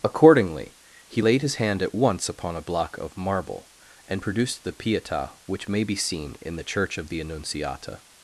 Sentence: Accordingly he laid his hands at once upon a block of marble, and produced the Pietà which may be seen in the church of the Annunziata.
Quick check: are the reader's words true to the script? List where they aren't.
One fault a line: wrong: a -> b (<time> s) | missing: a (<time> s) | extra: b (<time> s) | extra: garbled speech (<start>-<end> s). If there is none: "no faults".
wrong: hands -> hand (1.6 s)